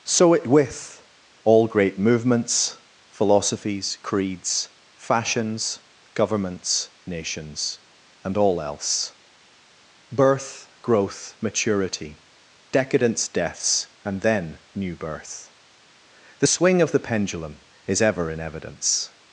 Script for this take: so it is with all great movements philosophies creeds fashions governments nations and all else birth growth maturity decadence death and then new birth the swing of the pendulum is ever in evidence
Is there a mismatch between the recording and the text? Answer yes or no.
yes